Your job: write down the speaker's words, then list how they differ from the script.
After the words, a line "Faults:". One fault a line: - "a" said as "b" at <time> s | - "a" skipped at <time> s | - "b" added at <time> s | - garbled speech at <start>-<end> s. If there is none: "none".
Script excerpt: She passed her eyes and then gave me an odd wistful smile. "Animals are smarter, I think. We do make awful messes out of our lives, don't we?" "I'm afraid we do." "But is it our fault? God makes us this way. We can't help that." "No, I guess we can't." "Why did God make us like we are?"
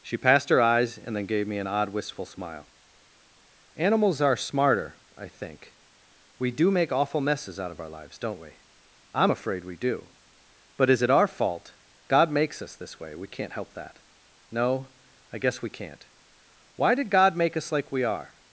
She passed her eyes and then gave me an odd wistful smile. "Animals are smarter, I think. We do make awful messes out of our lives, don't we?" "I'm afraid we do." "But is it our fault? God makes us this way. We can't help that." "No, I guess we can't." "Why did God make us like we are?"
Faults:
none